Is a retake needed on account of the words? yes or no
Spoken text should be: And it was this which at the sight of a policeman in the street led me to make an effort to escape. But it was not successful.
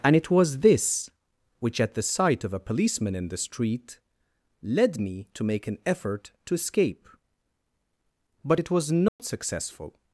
no